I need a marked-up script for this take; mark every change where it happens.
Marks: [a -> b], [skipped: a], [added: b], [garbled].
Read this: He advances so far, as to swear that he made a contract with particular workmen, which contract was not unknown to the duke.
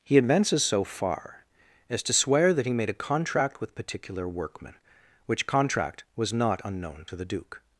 He advances so far, as to swear that he made a contract with particular workmen, which contract was not unknown to the duke.